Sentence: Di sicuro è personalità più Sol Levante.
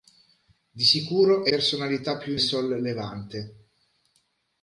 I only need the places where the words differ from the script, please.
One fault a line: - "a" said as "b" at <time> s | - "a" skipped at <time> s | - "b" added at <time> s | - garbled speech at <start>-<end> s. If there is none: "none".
none